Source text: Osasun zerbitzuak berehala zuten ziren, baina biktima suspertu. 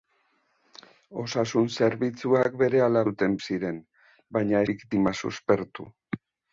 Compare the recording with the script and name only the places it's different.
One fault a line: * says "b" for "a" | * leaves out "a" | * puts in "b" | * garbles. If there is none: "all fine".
all fine